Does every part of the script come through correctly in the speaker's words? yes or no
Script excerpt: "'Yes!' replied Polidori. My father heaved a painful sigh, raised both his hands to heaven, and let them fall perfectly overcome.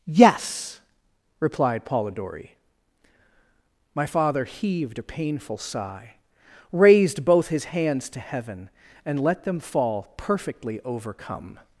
yes